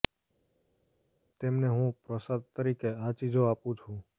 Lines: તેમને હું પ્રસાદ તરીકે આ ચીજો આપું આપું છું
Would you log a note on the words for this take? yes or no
yes